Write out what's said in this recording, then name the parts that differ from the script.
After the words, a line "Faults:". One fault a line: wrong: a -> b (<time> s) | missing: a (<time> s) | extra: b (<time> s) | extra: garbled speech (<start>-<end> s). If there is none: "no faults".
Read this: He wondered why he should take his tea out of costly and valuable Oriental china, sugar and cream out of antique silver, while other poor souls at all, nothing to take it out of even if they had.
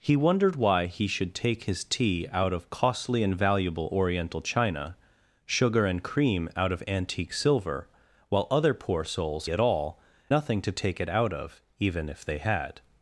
He wondered why he should take his tea out of costly and valuable Oriental china, sugar and cream out of antique silver, while other poor souls at all, nothing to take it out of even if they had.
Faults:
no faults